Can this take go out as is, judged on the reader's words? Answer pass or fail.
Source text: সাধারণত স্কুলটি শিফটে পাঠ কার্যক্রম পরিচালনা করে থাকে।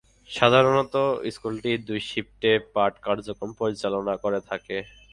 fail